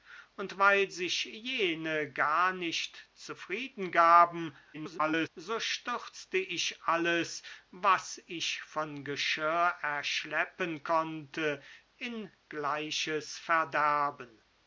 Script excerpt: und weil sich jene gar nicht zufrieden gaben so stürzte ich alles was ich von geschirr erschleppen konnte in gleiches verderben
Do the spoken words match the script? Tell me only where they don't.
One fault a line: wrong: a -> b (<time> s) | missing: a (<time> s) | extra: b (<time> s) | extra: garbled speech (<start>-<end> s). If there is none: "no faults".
extra: garbled speech (4.7-5.3 s)